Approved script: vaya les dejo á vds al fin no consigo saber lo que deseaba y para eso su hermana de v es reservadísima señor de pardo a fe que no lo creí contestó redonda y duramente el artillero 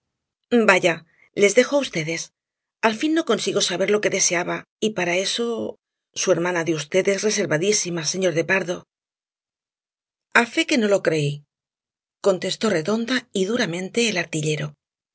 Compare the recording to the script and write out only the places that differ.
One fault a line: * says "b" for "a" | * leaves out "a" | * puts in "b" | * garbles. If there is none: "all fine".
all fine